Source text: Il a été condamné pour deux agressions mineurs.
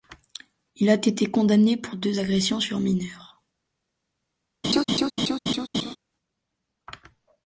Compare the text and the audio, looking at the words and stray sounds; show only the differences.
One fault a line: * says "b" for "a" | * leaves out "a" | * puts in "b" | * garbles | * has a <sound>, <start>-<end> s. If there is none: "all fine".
* puts in "sur"
* has a laugh, 4.6-6.0 s